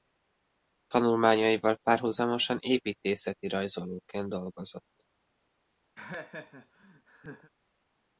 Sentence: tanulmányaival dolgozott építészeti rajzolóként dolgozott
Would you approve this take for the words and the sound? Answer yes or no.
no